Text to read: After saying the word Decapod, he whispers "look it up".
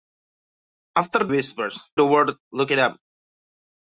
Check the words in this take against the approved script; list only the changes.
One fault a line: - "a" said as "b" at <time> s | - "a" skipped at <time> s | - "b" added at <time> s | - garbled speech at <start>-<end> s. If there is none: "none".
- "saying" said as "whispers" at 1.3 s
- "Decapod he whispers" skipped at 2.3 s